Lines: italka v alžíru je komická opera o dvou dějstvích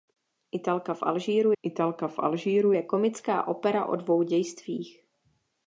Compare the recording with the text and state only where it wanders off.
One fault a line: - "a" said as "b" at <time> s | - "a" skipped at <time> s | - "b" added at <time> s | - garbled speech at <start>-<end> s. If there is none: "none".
- "italka v alžíru" added at 1.6 s